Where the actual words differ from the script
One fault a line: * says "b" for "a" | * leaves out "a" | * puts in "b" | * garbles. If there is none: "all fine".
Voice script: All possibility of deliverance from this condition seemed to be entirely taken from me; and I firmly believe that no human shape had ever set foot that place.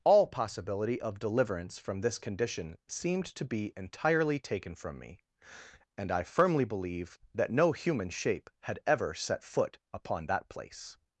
* puts in "upon"